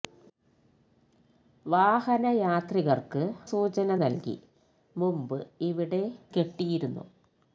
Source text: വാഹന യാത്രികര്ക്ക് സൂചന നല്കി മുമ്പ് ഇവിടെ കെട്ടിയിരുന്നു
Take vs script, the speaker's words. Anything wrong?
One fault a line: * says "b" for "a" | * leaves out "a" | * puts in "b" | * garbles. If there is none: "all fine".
all fine